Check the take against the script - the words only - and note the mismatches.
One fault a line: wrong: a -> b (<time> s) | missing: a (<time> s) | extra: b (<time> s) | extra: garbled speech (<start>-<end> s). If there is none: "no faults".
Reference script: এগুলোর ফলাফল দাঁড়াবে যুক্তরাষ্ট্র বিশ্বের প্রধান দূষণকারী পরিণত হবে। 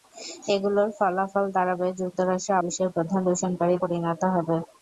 no faults